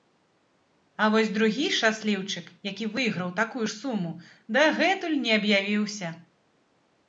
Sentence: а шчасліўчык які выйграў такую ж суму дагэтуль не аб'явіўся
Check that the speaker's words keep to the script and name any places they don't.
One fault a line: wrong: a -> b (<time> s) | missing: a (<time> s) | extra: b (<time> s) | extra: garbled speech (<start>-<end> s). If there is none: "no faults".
extra: вось другі (1.1 s)